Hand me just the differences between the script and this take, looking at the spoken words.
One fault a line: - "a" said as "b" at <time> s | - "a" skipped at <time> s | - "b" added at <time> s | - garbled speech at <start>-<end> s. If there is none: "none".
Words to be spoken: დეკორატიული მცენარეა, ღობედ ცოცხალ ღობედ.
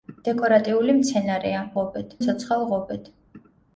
none